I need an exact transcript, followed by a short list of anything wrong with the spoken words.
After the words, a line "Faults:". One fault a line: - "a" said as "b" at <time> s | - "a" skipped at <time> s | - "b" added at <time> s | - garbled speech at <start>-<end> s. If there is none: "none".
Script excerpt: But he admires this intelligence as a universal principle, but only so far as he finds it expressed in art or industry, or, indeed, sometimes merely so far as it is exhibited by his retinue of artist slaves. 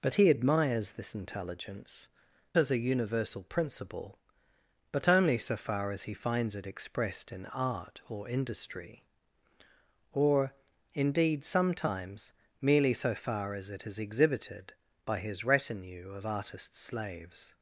But he admires this intelligence as a universal principle, but only so far as he finds it expressed in art or industry, or, indeed, sometimes merely so far as it is exhibited by his retinue of artist slaves.
Faults:
none